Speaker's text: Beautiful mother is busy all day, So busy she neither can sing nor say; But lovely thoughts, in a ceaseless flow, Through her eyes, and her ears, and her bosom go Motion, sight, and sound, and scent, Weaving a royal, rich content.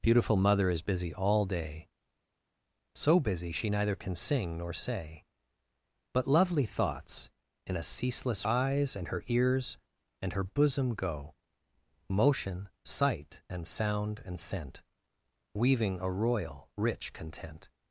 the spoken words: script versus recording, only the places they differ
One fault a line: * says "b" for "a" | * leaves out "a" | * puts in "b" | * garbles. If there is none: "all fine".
* leaves out "flow Through her"